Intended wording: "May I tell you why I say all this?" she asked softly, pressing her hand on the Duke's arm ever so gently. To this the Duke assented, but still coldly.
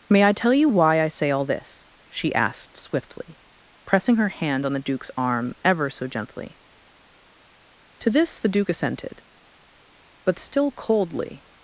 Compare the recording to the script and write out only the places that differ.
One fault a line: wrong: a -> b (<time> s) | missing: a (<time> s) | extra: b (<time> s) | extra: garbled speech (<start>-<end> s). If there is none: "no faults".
wrong: softly -> swiftly (2.8 s)